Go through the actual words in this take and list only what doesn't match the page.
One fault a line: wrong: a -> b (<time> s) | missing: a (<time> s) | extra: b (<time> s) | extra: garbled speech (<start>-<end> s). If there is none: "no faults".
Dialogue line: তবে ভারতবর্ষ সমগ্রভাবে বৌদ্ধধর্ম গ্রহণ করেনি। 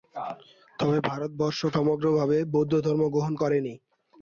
no faults